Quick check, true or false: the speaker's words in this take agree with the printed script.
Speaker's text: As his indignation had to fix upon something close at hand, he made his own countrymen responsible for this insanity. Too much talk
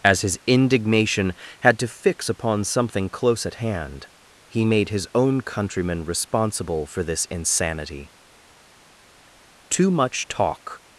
true